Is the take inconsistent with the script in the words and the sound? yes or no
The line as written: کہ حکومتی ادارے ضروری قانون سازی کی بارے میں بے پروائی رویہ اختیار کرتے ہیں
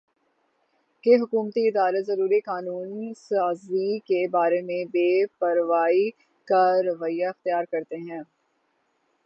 yes